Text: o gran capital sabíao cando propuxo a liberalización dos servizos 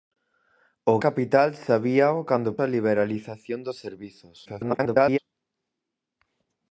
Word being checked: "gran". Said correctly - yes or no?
no